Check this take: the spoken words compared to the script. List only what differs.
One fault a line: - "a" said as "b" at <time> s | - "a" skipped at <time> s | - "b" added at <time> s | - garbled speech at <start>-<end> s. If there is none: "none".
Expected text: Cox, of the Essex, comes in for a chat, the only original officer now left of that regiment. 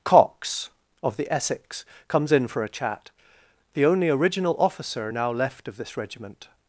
- "that" said as "this" at 5.8 s